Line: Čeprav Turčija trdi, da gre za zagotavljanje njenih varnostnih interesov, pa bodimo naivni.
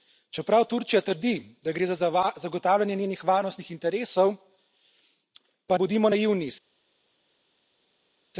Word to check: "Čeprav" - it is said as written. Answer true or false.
true